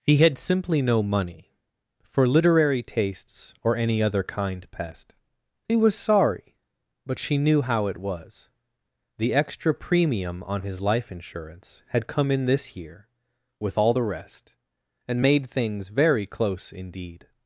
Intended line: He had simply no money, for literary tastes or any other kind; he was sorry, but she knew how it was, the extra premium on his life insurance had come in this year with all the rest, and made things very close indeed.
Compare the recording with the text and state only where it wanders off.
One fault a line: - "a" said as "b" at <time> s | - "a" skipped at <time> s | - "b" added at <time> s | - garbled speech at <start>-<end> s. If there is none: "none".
- "pest" added at 4.7 s